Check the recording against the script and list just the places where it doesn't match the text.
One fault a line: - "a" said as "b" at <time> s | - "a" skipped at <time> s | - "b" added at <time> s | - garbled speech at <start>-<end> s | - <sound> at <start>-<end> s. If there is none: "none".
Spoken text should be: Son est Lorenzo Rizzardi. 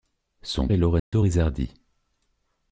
- dropout at 1.0-1.1 s